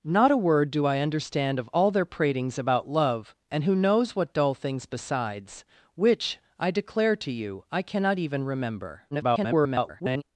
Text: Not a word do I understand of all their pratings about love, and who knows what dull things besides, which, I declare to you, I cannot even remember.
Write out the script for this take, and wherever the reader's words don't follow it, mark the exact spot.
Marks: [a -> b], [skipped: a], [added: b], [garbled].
Not a word do I understand of all their pratings about love, and who knows what dull things besides, which, I declare to you, I cannot even remember. [garbled]